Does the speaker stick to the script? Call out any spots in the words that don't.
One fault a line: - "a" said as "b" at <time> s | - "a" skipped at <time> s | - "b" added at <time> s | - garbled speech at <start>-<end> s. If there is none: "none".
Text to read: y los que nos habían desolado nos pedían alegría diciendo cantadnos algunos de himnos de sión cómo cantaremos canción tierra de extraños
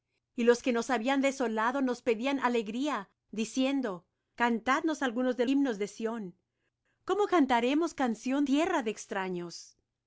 none